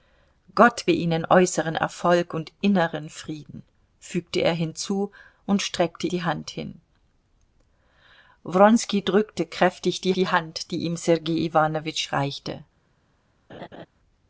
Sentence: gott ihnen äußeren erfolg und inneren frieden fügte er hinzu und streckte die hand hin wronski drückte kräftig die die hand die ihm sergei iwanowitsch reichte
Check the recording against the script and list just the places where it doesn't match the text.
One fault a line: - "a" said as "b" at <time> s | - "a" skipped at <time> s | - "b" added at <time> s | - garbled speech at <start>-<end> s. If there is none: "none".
none